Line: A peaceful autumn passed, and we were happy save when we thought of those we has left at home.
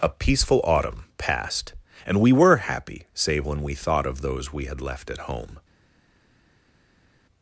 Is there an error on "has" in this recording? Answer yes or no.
yes